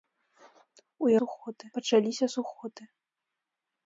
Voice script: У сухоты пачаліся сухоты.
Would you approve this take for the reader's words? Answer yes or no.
yes